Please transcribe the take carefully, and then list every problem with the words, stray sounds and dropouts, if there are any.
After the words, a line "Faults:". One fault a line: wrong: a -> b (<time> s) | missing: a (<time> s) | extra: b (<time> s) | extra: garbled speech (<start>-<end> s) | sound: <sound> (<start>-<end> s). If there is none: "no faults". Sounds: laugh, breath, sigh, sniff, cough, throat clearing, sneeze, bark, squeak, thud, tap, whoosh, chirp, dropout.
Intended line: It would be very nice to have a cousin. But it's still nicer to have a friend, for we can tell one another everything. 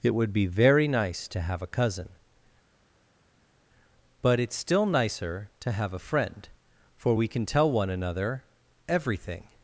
It would be very nice to have a cousin. But it's still nicer to have a friend, for we can tell one another everything.
Faults:
no faults